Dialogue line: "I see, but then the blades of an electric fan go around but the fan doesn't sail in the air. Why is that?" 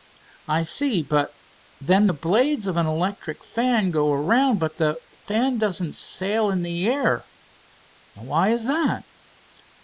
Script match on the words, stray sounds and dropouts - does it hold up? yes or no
yes